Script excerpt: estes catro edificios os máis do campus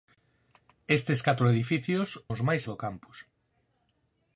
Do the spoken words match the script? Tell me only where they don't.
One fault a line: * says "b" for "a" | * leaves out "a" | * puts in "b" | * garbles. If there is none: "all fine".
all fine